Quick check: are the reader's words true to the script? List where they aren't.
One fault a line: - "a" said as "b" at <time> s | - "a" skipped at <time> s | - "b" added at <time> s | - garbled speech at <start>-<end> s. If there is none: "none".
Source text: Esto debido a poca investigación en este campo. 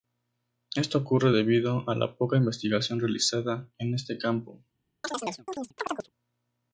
- "ocurre" added at 1.0 s
- "la" added at 1.9 s
- "realizada" added at 3.0 s